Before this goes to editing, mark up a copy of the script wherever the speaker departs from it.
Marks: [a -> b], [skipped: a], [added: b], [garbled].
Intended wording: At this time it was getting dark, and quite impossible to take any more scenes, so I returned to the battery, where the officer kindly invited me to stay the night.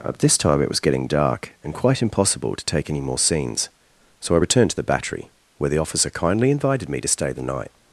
At this time it was getting dark, and quite impossible to take any more scenes, so I returned to the battery, where the officer kindly invited me to stay the night.